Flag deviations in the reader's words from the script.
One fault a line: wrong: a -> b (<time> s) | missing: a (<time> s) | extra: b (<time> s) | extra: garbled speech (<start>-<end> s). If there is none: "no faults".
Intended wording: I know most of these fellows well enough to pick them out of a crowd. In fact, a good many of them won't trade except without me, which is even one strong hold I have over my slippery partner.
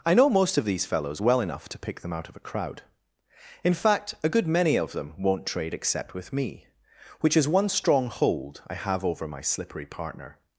wrong: without -> with (6.1 s)
missing: even (7.5 s)